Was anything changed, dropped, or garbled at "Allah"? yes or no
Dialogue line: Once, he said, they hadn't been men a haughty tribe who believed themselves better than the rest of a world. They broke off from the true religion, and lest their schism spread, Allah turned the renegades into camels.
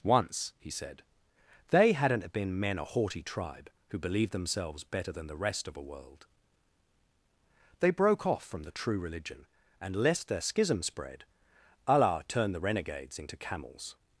no